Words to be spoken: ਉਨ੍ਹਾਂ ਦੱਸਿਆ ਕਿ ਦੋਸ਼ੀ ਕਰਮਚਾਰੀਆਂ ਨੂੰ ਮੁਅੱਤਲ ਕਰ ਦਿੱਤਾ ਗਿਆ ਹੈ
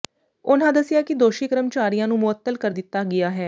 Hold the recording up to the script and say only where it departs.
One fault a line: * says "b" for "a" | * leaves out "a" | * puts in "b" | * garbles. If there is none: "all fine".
all fine